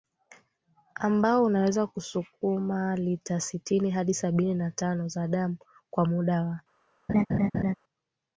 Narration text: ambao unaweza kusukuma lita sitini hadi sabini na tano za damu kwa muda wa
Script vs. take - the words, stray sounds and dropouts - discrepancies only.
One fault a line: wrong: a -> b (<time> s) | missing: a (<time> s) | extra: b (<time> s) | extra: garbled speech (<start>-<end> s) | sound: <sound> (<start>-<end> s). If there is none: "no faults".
sound: laugh (7.1-7.8 s)